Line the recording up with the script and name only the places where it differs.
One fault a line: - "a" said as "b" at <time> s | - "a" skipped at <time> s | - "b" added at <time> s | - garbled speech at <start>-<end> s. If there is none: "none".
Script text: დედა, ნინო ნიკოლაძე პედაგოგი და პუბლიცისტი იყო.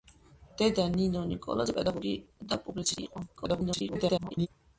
- garbled speech at 3.4-4.5 s